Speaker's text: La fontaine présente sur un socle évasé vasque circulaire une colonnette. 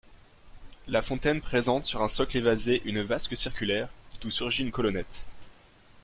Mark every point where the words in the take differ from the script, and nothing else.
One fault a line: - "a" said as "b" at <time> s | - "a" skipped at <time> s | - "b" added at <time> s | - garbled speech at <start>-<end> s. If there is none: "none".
- "une" added at 2.9 s
- "d'où surgit" added at 4.2 s